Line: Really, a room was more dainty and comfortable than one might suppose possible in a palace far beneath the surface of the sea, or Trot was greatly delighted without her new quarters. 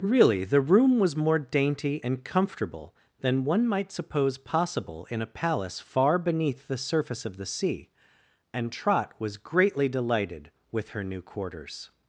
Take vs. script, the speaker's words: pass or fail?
fail